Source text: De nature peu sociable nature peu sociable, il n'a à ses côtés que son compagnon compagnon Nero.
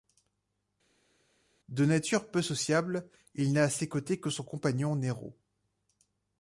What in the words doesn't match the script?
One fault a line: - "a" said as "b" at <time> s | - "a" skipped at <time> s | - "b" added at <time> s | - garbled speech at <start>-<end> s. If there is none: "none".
- "nature peu sociable" skipped at 3.1 s
- "compagnon" skipped at 5.0 s